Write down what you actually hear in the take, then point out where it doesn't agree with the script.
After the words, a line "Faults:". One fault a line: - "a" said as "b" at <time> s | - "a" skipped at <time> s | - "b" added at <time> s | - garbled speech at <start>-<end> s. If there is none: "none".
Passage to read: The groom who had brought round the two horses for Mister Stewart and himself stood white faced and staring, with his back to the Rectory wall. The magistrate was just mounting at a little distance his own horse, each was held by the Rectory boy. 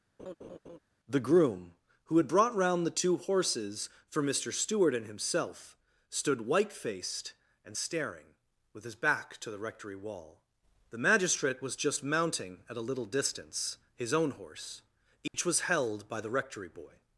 The groom who had brought round the two horses for Mister Stewart and himself stood white faced and staring, with his back to the Rectory wall. The magistrate was just mounting at a little distance his own horse, each was held by the Rectory boy.
Faults:
none